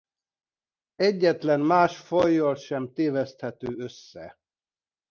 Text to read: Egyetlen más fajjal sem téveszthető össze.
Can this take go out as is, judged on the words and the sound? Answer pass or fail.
pass